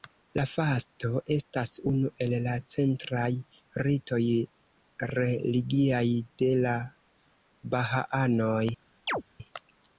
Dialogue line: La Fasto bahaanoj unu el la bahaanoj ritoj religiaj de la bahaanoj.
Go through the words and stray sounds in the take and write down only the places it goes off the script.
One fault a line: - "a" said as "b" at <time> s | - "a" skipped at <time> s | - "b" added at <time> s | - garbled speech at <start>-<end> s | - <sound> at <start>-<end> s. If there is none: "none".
- "bahaanoj" said as "estas" at 1.4 s
- "bahaanoj" said as "centraj" at 2.7 s
- chirp at 9.1-9.2 s